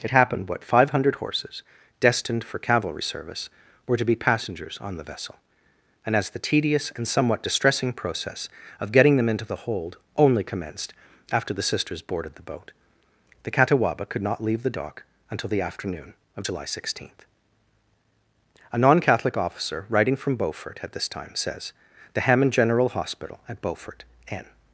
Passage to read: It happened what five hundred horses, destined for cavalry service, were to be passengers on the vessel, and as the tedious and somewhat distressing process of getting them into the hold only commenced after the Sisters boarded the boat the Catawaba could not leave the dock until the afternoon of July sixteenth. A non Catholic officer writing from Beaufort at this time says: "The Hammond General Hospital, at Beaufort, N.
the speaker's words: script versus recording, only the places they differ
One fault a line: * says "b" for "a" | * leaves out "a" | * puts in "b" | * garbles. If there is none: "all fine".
all fine